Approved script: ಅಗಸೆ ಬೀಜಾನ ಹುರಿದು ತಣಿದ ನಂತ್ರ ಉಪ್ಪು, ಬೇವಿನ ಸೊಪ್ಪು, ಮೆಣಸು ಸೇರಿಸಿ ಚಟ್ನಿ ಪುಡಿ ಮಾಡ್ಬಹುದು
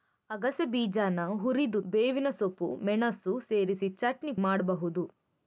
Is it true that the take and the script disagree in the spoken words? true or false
true